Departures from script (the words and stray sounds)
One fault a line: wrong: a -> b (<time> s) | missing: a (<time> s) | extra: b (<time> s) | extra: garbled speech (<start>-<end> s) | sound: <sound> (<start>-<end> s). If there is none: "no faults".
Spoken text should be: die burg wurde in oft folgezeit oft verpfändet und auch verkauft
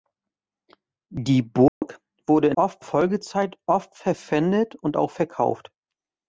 sound: dropout (1.7-1.8 s)